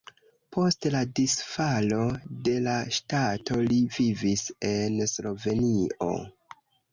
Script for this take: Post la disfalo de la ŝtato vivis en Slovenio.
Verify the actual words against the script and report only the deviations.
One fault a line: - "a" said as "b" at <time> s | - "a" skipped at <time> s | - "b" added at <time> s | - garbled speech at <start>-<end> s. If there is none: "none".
- "li" added at 3.7 s